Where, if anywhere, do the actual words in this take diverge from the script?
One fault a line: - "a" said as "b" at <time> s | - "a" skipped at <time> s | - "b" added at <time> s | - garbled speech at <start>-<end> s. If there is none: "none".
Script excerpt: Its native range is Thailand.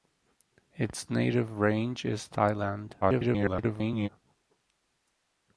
- garbled speech at 3.0-4.1 s